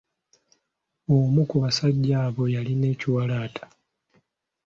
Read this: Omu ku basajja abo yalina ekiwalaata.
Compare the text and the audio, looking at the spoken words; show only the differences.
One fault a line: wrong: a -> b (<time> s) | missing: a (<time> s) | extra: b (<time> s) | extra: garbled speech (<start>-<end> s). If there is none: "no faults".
no faults